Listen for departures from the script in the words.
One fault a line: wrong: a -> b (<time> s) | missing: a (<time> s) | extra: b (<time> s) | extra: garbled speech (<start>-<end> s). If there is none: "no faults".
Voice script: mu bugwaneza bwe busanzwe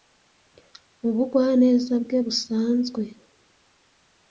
no faults